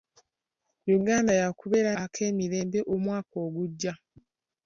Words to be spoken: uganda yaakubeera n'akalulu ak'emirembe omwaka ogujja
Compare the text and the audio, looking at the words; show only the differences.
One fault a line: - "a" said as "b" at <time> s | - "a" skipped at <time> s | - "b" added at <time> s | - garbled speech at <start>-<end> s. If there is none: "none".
- "n'akalulu" skipped at 1.9 s